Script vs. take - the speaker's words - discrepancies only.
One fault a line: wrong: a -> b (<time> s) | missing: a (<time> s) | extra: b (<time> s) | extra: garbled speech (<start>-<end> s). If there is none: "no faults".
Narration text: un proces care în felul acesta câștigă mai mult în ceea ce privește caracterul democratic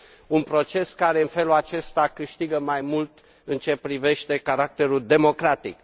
no faults